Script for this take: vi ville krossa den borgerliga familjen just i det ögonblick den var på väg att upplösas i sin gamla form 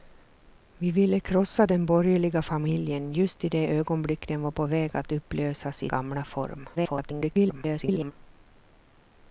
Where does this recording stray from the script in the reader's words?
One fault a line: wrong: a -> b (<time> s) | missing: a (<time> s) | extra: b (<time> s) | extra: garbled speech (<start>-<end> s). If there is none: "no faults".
missing: sin (5.9 s)
extra: garbled speech (6.8-8.1 s)